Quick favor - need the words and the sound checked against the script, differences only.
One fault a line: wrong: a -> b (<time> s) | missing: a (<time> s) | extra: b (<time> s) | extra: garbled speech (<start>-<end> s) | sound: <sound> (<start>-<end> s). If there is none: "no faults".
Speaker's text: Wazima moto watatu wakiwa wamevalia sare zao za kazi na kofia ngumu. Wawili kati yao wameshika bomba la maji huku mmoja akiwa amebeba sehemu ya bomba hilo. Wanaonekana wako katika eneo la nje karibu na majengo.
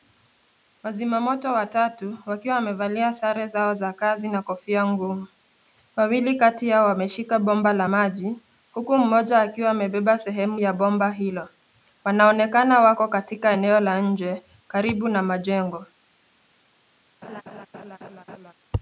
sound: laugh (17.2-18.5 s)